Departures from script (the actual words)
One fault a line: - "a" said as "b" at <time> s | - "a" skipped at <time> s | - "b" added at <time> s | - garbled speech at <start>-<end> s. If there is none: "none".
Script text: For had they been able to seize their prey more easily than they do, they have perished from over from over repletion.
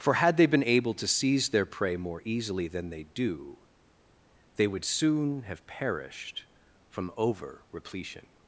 - "would soon" added at 4.6 s
- "from over" skipped at 7.6 s